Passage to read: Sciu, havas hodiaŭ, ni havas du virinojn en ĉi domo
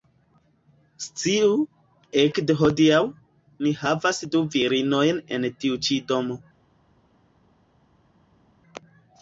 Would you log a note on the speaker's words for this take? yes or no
yes